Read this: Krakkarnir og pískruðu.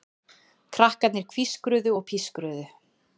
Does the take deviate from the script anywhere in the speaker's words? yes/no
yes